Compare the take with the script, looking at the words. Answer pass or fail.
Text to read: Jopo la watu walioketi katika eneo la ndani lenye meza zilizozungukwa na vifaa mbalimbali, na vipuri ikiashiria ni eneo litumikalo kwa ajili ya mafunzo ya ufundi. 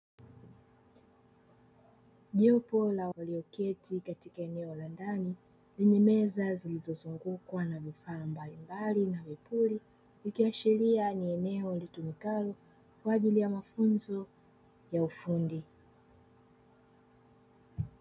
fail